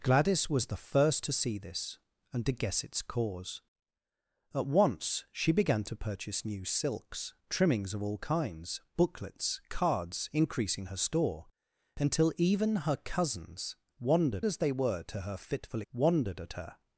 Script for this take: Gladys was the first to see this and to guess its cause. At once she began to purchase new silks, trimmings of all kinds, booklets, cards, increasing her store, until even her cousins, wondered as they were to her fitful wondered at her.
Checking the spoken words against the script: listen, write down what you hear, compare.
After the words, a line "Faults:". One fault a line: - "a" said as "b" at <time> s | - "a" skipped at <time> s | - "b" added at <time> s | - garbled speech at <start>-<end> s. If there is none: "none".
Gladys was the first to see this and to guess its cause. At once she began to purchase new silks, trimmings of all kinds, booklets, cards, increasing her store, until even her cousins, wondered as they were to her fitful wondered at her.
Faults:
none